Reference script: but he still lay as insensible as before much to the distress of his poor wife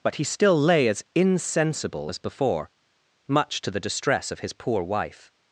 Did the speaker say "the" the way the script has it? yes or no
yes